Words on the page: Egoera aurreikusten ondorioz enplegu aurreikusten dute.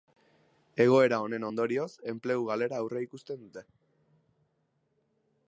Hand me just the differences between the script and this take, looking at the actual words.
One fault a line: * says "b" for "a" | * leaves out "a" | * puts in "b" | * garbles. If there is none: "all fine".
* says "honen" for "aurreikusten"
* puts in "galera"